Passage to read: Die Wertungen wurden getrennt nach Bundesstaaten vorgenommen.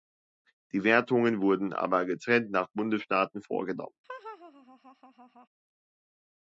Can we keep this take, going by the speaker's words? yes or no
no